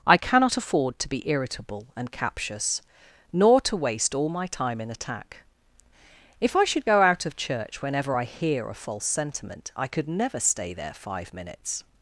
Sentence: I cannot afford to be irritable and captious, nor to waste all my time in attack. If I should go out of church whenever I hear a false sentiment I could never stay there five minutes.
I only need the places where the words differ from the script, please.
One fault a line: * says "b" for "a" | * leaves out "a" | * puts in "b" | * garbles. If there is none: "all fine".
all fine